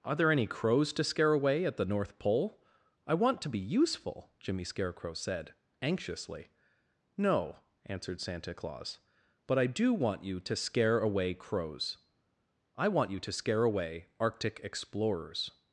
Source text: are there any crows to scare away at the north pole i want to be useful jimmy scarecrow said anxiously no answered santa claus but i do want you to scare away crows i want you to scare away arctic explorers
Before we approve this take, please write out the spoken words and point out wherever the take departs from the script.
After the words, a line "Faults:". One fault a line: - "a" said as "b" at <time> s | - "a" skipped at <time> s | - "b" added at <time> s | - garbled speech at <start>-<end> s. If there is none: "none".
are there any crows to scare away at the north pole i want to be useful jimmy scarecrow said anxiously no answered santa claus but i do want you to scare away crows i want you to scare away arctic explorers
Faults:
none